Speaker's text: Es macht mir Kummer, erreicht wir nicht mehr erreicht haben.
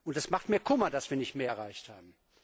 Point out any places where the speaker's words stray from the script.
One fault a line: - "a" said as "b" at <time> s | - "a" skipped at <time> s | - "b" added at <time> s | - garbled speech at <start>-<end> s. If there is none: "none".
- "erreicht" said as "dass" at 0.9 s